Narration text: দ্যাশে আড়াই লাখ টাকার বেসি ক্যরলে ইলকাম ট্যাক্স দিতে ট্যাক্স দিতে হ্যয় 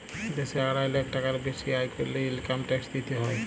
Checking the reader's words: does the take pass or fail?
fail